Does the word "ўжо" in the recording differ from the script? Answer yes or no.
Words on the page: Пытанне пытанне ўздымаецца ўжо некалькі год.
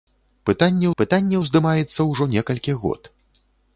no